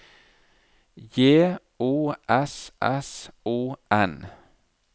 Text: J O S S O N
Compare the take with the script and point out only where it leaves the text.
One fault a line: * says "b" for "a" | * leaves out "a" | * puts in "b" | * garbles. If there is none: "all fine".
all fine